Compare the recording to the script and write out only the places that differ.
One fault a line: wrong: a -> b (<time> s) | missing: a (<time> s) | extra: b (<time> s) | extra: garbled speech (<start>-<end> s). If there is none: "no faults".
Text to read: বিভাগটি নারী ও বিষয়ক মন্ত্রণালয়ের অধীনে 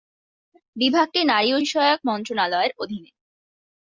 no faults